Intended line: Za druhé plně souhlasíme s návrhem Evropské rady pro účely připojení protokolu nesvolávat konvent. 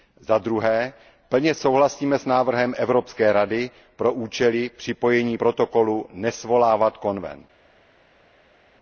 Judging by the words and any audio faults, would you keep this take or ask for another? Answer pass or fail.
pass